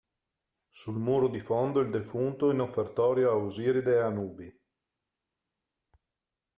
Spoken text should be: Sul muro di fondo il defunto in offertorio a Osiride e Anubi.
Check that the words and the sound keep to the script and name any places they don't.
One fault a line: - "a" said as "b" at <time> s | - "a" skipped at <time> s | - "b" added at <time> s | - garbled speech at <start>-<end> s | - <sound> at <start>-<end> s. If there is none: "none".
none